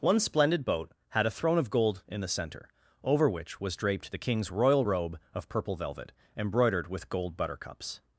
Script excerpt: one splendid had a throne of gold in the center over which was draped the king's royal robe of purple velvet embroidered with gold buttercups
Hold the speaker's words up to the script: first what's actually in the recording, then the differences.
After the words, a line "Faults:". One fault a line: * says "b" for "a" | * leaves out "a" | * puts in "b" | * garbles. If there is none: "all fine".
one splendid boat had a throne of gold in the center over which was draped the king's royal robe of purple velvet embroidered with gold buttercups
Faults:
* puts in "boat"